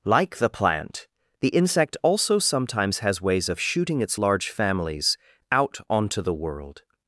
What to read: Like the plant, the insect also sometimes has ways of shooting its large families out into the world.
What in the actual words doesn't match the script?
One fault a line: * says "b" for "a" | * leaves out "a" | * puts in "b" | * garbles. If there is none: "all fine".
* says "onto" for "into"